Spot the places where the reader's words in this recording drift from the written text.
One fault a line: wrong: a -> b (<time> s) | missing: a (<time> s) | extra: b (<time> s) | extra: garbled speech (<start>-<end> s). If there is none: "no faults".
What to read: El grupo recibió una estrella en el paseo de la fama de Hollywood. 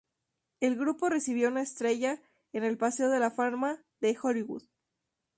no faults